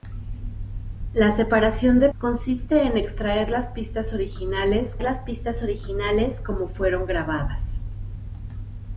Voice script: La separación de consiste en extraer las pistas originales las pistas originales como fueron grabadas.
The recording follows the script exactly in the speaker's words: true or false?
true